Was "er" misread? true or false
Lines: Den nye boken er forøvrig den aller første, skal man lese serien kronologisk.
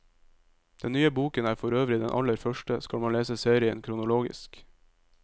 false